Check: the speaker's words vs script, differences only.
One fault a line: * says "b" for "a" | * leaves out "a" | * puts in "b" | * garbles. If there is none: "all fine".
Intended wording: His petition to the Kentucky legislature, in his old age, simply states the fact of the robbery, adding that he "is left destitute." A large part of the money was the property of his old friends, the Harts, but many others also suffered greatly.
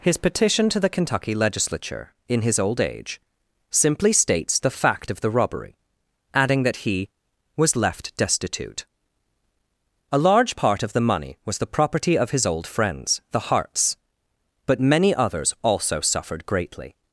* says "was" for "is"